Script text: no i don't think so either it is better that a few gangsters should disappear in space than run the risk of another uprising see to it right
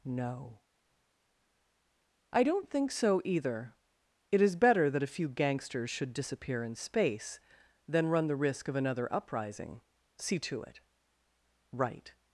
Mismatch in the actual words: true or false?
false